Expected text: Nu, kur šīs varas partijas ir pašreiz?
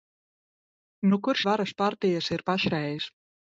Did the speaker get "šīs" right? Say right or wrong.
wrong